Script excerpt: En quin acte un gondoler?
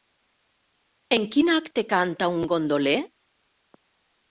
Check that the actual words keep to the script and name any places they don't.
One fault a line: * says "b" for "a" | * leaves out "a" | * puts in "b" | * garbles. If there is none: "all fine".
* puts in "canta"